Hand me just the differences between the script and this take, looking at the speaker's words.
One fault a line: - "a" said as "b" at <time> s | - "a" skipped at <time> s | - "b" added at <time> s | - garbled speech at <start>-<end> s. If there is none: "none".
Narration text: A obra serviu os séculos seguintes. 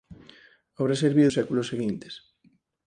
none